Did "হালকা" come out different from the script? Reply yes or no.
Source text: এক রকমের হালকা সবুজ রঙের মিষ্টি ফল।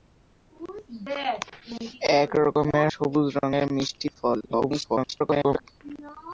yes